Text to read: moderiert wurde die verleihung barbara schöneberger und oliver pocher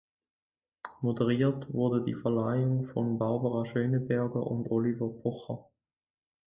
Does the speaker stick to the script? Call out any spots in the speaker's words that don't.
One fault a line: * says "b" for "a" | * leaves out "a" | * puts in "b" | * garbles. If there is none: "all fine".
* puts in "von"